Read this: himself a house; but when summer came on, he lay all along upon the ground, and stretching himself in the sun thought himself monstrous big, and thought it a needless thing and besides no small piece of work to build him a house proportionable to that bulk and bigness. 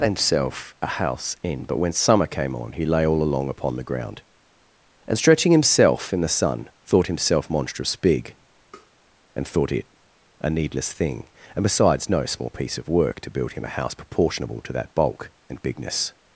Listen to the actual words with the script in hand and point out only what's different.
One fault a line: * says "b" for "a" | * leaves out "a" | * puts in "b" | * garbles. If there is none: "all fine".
* puts in "in"